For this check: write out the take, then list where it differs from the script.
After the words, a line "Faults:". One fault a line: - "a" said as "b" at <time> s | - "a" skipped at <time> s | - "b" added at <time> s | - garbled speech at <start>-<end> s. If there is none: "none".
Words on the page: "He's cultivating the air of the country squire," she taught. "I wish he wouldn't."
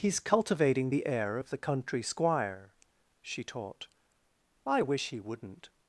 "He's cultivating the air of the country squire," she taught. "I wish he wouldn't."
Faults:
none